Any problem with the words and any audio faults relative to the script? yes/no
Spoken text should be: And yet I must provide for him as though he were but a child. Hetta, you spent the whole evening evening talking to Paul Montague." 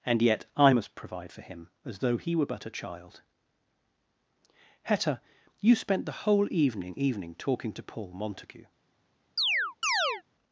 yes